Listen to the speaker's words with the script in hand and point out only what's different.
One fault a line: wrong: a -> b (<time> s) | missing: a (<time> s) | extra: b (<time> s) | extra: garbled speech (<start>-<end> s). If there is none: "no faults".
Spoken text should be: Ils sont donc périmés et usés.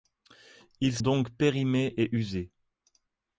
missing: sont (1.0 s)